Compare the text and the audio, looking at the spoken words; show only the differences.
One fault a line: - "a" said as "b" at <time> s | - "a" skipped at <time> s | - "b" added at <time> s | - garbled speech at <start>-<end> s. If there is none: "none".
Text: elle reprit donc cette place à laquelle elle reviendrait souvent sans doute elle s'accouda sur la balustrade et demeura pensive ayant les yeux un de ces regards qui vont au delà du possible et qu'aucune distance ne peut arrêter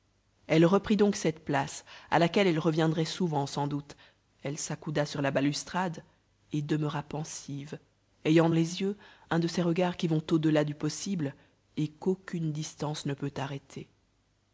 none